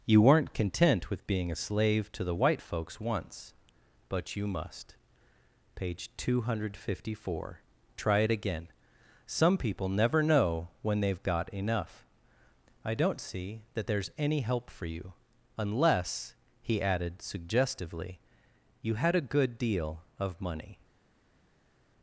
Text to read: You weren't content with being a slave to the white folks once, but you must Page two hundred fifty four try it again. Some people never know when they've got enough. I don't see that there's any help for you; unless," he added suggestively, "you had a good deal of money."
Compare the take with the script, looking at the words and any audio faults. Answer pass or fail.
pass